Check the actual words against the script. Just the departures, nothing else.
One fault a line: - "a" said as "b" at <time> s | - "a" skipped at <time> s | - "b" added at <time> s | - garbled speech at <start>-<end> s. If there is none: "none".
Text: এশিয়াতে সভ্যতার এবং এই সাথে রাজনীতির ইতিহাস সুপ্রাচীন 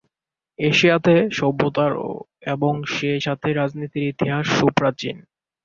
- "এই" said as "সেই" at 2.9 s